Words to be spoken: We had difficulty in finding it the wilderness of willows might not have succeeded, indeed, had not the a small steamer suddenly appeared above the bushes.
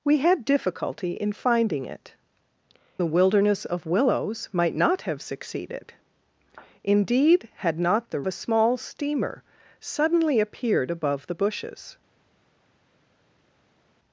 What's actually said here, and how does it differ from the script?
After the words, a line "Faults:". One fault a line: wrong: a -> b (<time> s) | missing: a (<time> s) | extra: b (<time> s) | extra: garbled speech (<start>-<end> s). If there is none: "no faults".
We had difficulty in finding it the wilderness of willows might not have succeeded, indeed, had not the a small steamer suddenly appeared above the bushes.
Faults:
no faults